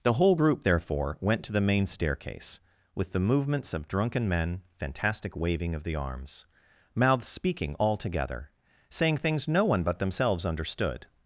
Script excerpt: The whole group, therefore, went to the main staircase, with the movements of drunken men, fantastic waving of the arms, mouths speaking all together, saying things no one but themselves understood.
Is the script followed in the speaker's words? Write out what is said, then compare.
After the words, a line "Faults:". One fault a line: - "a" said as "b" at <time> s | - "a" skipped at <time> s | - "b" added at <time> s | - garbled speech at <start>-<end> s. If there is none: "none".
The whole group, therefore, went to the main staircase, with the movements of drunken men, fantastic waving of the arms, mouths speaking all together, saying things no one but themselves understood.
Faults:
none